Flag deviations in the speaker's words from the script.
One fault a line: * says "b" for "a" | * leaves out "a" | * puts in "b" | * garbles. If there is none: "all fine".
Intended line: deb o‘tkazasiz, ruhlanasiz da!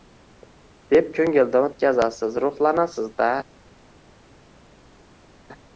* puts in "ko‘ngildan"